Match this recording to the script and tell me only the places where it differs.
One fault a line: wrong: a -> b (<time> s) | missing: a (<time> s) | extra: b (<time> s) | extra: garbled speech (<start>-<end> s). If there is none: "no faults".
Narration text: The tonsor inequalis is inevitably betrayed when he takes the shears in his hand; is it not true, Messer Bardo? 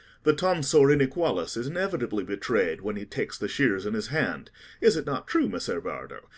no faults